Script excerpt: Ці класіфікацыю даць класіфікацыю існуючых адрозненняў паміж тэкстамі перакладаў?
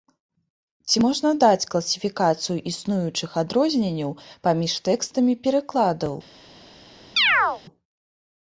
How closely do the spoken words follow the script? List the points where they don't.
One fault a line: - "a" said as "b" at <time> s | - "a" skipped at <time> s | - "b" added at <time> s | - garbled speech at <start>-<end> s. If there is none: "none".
- "класіфікацыю" said as "можна" at 1.1 s